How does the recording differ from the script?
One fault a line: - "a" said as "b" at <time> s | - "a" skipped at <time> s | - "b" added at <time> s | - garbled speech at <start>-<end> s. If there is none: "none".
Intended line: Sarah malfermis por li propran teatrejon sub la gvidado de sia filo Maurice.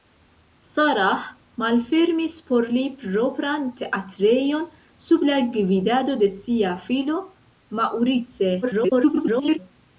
- garbled speech at 8.6-9.6 s